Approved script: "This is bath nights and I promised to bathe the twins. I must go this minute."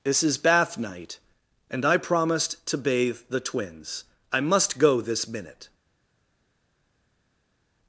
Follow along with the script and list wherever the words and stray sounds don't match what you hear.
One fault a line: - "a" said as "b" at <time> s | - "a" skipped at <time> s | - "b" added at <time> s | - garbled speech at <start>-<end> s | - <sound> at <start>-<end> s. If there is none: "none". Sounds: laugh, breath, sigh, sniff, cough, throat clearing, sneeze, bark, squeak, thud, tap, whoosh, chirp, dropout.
- "nights" said as "night" at 0.8 s